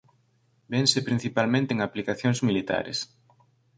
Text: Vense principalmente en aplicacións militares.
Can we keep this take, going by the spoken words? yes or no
yes